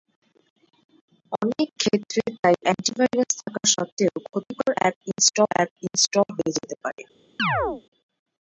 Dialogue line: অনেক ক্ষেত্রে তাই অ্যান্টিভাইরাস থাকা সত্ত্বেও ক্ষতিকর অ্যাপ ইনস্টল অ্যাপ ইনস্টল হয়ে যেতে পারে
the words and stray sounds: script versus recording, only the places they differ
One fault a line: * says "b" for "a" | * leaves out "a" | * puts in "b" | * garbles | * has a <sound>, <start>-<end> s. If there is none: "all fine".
* has a chirp, 7.4-7.8 s